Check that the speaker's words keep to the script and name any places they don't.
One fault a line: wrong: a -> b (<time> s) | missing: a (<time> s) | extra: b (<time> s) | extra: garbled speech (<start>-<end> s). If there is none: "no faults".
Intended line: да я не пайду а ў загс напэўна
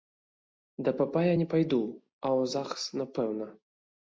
extra: папа (1.0 s)